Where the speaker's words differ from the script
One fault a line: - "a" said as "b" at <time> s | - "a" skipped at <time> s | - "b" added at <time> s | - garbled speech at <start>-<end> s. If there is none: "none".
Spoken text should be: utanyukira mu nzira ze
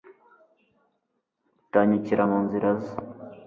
none